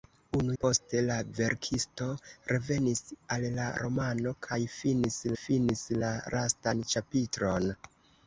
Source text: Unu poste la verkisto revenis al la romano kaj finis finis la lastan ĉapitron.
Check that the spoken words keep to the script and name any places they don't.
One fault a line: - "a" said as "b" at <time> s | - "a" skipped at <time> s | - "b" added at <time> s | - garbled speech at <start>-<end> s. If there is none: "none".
none